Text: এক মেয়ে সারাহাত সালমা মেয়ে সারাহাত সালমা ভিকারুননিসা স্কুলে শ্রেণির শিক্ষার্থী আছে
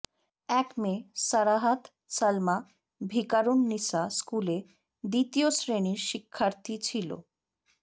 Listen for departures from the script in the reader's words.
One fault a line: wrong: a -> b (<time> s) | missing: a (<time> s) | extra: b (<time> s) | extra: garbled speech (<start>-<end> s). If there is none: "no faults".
missing: মেয়ে সারাহাত সালমা (2.6 s)
extra: দ্বিতীয় (5.0 s)
wrong: আছে -> ছিল (6.8 s)